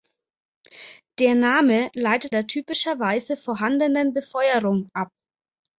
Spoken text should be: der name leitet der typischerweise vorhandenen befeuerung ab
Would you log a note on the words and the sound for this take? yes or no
no